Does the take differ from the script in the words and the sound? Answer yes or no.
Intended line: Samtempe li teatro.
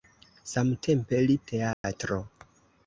yes